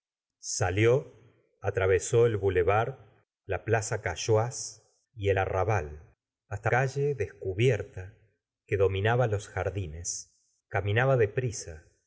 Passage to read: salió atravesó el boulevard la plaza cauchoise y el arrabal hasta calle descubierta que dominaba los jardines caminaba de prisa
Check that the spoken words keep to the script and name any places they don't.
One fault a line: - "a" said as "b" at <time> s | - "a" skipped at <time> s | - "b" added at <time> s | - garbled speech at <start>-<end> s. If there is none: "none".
none